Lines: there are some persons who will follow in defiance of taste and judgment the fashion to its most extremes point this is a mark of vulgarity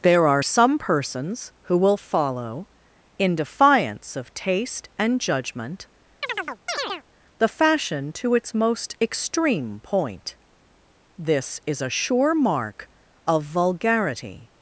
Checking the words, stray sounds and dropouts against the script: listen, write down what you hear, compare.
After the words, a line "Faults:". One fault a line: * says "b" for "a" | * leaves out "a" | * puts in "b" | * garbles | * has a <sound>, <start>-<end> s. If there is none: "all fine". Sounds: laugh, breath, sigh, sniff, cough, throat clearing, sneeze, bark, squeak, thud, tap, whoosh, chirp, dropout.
there are some persons who will follow in defiance of taste and judgment the fashion to its most extreme point this is a sure mark of vulgarity
Faults:
* has a chirp, 6.2-7.0 s
* says "extreme" for "extremes"
* puts in "sure"